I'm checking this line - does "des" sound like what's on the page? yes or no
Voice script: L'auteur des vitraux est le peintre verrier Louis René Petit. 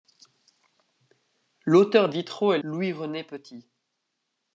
no